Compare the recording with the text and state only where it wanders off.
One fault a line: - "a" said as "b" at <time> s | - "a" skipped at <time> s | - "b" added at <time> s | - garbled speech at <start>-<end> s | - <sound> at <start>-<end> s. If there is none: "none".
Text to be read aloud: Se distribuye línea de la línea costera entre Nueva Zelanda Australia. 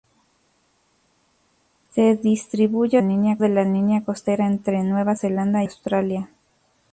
none